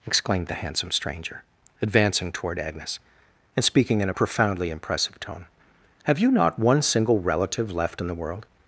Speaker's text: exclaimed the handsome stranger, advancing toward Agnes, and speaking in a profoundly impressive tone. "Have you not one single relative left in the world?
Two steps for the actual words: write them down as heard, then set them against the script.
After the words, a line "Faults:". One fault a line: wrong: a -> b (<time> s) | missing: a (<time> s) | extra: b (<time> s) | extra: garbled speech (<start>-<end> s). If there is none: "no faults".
exclaimed the handsome stranger, advancing toward Agnes, and speaking in a profoundly impressive tone. "Have you not one single relative left in the world?
Faults:
no faults